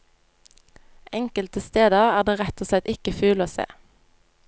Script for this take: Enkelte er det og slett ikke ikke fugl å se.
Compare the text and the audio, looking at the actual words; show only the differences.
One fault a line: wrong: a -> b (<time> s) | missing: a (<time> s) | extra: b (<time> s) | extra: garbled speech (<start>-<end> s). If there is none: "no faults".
extra: steder (1.6 s)
extra: rett (2.4 s)
missing: ikke (3.1 s)